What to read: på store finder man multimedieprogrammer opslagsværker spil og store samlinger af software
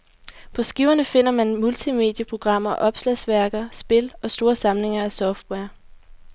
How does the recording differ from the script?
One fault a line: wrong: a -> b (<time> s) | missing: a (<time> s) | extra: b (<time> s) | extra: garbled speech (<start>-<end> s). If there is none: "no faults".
wrong: store -> skiverne (0.6 s)